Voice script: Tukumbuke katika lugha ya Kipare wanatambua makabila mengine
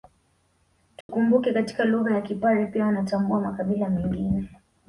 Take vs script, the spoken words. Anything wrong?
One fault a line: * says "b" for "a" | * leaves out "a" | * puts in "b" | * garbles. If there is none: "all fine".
* puts in "pia"